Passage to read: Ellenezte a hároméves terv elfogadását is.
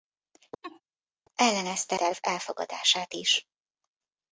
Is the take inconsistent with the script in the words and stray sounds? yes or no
yes